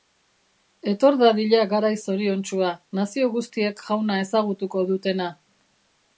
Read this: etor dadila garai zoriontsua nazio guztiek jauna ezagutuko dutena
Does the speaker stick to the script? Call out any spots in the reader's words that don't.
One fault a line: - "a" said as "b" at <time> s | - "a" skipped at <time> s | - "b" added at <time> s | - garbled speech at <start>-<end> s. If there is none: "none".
none